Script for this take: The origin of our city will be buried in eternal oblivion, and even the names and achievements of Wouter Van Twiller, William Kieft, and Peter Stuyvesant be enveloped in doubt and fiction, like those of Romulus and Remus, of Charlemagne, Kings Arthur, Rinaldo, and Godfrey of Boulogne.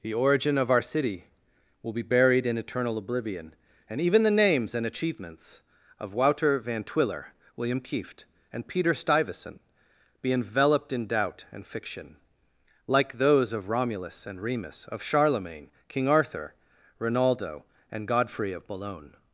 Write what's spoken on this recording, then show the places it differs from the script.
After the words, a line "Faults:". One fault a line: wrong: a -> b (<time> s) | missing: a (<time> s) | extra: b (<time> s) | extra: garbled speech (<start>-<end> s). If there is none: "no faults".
The origin of our city will be buried in eternal oblivion, and even the names and achievements of Wouter Van Twiller, William Kieft, and Peter Stuyvesant be enveloped in doubt and fiction, like those of Romulus and Remus, of Charlemagne, King Arthur, Rinaldo, and Godfrey of Boulogne.
Faults:
wrong: Kings -> King (15.9 s)